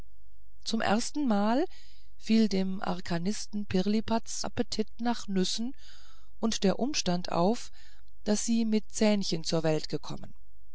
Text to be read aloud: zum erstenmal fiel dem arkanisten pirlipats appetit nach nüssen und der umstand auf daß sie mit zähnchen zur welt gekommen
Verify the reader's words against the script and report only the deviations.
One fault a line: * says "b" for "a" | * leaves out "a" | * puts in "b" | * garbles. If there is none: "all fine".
all fine